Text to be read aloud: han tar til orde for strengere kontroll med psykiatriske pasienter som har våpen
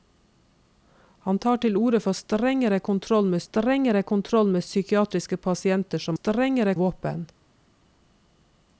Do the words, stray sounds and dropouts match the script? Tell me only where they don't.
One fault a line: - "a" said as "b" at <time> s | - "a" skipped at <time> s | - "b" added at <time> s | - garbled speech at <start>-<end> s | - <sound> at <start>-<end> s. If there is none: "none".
- "strengere kontroll med" added at 3.4 s
- "har" said as "strengere" at 6.1 s